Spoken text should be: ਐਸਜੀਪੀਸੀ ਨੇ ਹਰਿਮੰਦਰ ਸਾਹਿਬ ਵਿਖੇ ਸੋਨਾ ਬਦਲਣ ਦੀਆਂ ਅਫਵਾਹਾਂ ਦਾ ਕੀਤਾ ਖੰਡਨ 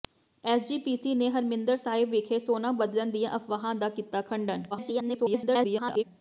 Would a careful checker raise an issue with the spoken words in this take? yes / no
yes